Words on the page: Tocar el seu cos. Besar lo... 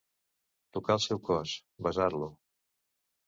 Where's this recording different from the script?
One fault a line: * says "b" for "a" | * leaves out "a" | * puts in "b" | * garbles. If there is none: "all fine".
all fine